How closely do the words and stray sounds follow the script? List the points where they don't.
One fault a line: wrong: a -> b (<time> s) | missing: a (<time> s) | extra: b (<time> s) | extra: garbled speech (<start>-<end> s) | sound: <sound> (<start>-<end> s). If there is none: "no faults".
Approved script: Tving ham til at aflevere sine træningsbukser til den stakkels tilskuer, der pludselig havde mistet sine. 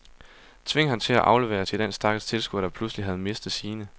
missing: sine træningsbukser (1.6 s)